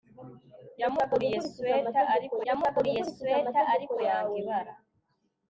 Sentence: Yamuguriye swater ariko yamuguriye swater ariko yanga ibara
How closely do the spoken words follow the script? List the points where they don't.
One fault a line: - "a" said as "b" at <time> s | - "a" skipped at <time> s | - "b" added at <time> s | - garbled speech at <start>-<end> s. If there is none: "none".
none